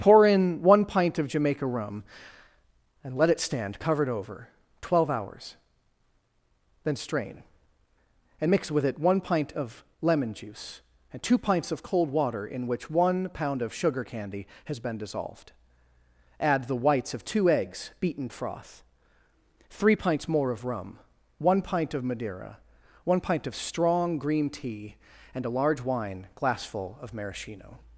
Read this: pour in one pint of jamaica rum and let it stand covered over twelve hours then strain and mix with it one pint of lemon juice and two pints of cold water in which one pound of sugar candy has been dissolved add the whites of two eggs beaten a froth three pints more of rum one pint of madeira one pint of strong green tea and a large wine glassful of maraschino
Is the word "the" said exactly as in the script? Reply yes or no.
yes